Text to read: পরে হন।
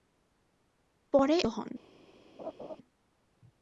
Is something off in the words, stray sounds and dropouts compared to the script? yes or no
yes